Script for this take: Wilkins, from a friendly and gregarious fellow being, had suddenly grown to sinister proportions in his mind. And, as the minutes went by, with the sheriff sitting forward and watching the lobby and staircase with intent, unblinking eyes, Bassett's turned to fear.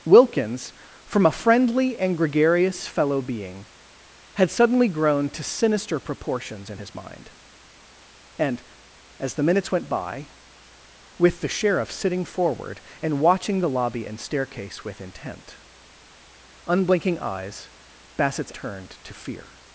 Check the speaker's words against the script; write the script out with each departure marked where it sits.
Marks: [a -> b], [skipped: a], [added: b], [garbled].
Wilkins, from a friendly and gregarious fellow being, had suddenly grown to sinister proportions in his mind. And, as the minutes went by, with the sheriff sitting forward and watching the lobby and staircase with intent, unblinking eyes, Bassett's turned to fear.